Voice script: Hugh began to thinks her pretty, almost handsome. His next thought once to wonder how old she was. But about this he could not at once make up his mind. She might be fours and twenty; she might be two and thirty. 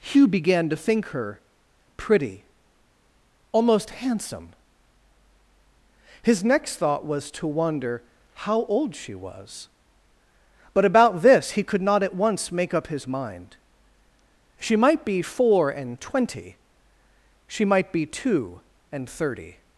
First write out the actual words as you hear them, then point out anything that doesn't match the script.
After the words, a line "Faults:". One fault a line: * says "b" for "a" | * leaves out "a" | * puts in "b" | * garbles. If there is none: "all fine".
Hugh began to think her pretty, almost handsome. His next thought was to wonder how old she was. But about this he could not at once make up his mind. She might be four and twenty; she might be two and thirty.
Faults:
* says "think" for "thinks"
* says "was" for "once"
* says "four" for "fours"